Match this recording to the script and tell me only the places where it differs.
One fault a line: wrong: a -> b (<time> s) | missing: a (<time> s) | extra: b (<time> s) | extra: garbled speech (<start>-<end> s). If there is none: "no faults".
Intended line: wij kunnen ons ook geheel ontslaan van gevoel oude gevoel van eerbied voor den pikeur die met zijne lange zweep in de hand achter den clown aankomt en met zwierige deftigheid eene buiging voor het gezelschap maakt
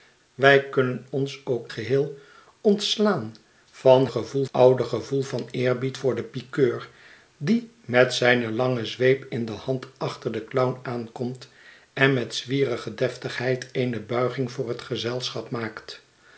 no faults